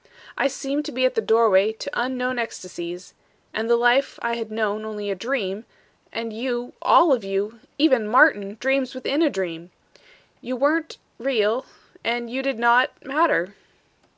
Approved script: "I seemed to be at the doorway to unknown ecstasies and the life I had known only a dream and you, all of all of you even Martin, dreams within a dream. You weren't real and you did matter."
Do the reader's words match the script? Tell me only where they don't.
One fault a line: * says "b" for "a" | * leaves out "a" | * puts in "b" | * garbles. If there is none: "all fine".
* leaves out "all of"
* puts in "not"